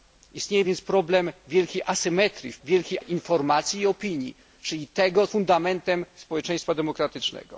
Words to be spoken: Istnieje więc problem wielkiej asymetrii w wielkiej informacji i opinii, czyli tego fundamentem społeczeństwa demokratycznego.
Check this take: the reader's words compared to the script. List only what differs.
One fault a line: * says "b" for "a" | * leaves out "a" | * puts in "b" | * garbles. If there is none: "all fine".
all fine